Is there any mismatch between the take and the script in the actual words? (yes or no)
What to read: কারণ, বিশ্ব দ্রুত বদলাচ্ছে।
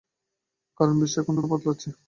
yes